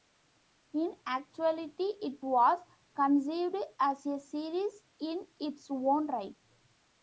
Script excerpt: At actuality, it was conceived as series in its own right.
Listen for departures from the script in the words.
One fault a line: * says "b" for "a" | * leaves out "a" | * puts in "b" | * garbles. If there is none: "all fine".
* says "In" for "At"
* puts in "a"